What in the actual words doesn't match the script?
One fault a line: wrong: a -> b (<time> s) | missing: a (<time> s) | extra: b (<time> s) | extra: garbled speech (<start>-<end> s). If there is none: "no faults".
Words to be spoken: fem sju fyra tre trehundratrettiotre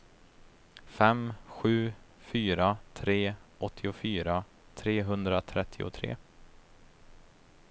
extra: åttiofyra (3.6 s)